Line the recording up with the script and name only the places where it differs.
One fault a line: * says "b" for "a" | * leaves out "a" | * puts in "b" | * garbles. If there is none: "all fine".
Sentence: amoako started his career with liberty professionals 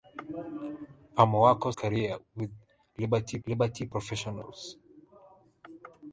* leaves out "started his"
* puts in "liberty"